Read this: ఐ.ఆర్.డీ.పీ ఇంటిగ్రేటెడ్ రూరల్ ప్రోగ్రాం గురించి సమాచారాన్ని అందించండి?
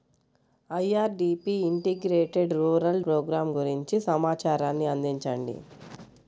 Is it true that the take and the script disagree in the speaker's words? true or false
false